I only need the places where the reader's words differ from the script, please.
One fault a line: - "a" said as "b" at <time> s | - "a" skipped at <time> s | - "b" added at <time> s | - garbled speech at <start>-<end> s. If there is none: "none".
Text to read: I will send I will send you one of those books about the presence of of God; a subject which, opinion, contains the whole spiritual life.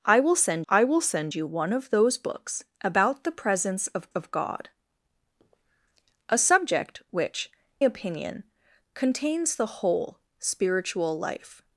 none